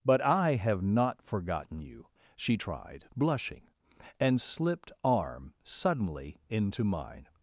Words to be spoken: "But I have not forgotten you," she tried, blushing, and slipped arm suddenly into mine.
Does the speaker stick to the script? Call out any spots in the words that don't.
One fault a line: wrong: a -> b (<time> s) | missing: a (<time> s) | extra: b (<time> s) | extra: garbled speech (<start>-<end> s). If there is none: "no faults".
no faults